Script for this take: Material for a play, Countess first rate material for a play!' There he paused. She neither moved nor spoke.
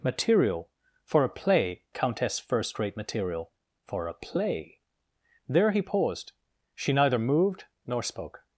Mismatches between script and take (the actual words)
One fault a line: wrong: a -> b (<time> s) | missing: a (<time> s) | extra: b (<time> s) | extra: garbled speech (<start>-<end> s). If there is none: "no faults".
no faults